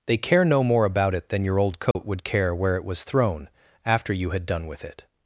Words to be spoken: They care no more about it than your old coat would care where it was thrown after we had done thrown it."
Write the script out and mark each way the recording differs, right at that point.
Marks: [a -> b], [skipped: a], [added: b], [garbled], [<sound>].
They care no more about it than your old coat [dropout] would care where it was thrown after [we -> you] had done [thrown -> with] it."